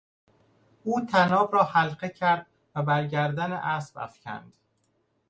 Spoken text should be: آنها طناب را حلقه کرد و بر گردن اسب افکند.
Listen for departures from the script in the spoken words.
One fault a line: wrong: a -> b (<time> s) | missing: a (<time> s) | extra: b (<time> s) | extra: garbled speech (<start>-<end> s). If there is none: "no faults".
wrong: آنها -> او (0.8 s)